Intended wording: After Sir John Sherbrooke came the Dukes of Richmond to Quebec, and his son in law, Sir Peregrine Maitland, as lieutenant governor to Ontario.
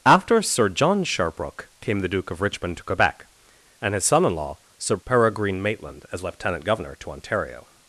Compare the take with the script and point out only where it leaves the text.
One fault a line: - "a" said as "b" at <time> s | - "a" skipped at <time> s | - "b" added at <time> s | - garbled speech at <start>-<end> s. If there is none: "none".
- "Dukes" said as "Duke" at 2.1 s